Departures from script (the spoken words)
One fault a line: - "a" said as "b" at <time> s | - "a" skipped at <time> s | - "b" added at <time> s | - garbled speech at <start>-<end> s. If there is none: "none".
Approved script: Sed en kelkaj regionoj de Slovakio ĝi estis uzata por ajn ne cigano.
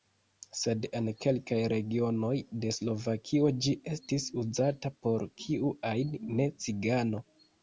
- "kiu" added at 5.4 s